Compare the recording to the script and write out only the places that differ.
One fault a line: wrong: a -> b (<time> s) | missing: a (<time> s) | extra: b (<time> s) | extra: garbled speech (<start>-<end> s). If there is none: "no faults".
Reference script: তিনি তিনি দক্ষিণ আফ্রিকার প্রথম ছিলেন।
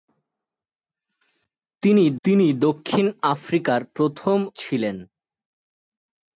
no faults